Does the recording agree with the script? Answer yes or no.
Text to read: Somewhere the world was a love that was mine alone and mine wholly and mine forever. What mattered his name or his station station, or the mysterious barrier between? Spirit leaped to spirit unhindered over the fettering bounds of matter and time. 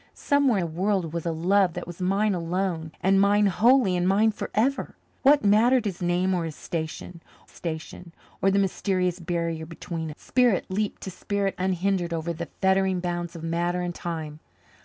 yes